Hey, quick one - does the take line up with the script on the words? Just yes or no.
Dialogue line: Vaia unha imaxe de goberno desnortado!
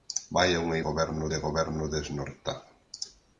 no